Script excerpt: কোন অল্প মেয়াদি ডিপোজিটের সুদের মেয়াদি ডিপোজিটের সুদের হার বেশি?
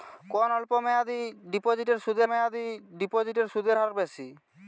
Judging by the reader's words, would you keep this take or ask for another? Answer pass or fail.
pass